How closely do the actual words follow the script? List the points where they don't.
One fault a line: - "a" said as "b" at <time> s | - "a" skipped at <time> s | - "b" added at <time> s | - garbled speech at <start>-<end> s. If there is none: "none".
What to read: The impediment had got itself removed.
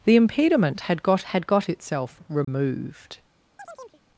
- "had got" added at 1.2 s